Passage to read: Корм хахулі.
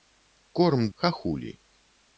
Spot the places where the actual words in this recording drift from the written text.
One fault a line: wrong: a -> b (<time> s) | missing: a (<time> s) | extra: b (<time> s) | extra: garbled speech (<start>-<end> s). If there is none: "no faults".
no faults